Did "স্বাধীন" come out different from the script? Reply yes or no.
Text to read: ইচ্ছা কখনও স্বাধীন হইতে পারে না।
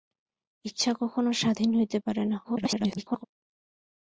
no